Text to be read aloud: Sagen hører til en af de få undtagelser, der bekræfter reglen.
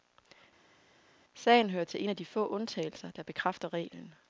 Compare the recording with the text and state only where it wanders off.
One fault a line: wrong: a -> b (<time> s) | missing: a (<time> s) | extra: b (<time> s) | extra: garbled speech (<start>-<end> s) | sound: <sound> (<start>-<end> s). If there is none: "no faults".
no faults